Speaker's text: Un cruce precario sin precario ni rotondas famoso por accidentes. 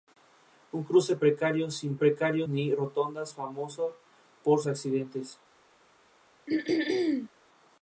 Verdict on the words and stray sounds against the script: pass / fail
fail